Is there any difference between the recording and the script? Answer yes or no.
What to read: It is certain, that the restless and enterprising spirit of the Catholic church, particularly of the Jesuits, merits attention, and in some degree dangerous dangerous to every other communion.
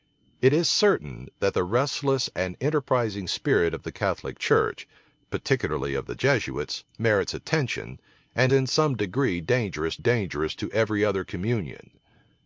no